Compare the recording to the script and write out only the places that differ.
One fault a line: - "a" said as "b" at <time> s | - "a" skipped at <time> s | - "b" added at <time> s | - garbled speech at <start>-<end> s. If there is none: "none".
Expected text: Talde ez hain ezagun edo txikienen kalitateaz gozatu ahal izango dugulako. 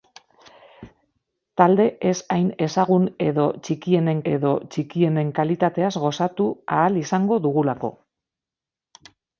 - "edo txikienen" added at 4.3 s